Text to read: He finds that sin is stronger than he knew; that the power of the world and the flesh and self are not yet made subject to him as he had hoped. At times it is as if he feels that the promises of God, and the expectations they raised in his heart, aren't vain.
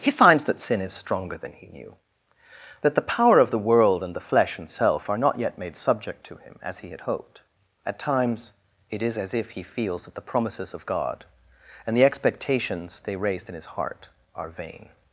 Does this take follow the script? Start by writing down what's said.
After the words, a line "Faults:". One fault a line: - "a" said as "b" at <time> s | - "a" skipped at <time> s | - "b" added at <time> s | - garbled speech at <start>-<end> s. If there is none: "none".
He finds that sin is stronger than he knew; that the power of the world and the flesh and self are not yet made subject to him as he had hoped. At times it is as if he feels that the promises of God, and the expectations they raised in his heart, are vain.
Faults:
- "aren't" said as "are" at 14.3 s